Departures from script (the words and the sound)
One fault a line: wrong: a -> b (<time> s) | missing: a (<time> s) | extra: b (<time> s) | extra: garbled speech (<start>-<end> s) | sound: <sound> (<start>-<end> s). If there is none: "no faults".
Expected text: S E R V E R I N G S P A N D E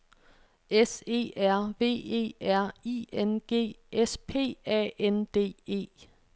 no faults